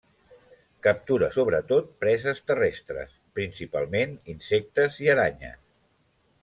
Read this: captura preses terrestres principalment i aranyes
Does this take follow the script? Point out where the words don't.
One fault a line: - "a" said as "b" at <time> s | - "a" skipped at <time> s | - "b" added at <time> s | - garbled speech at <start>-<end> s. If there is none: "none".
- "sobretot" added at 1.4 s
- "insectes" added at 4.4 s